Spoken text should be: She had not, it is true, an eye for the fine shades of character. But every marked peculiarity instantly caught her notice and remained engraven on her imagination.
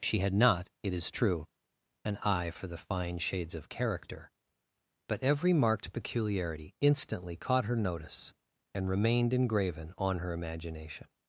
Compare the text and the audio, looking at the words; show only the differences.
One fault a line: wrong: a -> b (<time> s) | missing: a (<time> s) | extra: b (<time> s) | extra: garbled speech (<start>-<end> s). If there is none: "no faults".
no faults